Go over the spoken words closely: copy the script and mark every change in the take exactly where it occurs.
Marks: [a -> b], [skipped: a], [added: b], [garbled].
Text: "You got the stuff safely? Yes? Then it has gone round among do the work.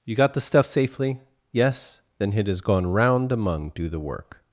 "You got the stuff safely? Yes? Then it has gone round among do the work.